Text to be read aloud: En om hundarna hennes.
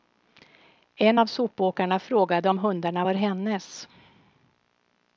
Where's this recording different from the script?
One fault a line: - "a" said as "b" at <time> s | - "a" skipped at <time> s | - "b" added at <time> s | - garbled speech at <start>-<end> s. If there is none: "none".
- "av sopåkarna frågade" added at 1.2 s
- "var" added at 3.0 s